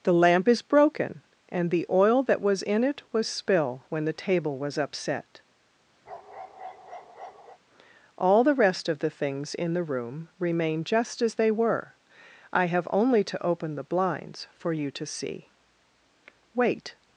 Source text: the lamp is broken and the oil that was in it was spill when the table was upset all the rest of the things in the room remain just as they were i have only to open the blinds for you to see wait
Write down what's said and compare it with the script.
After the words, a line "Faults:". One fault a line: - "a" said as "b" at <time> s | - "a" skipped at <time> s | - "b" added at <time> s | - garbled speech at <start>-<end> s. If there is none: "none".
the lamp is broken and the oil that was in it was spill when the table was upset all the rest of the things in the room remain just as they were i have only to open the blinds for you to see wait
Faults:
none